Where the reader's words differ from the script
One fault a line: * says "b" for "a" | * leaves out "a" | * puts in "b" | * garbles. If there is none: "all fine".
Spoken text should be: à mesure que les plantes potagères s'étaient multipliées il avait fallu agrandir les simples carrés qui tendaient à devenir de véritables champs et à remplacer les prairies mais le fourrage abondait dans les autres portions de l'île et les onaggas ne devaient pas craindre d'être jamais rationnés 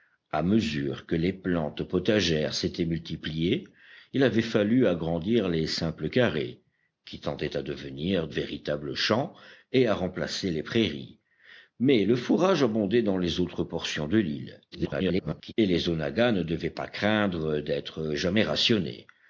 * leaves out "de"
* garbles